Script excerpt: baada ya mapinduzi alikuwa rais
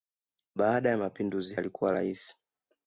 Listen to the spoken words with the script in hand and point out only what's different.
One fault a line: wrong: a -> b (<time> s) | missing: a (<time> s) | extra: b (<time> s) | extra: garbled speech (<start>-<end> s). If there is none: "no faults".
no faults